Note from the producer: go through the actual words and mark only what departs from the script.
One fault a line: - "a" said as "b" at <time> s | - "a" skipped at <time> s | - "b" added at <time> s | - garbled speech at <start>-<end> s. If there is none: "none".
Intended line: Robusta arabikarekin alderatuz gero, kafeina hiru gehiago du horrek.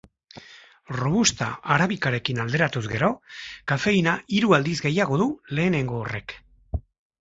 - "aldiz" added at 4.6 s
- "lehenengo" added at 5.6 s